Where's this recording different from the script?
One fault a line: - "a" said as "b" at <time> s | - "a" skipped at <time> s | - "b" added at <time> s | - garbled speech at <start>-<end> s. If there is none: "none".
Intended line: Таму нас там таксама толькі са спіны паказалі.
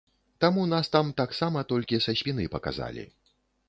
none